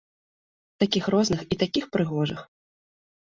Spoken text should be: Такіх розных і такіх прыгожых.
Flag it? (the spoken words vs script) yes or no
no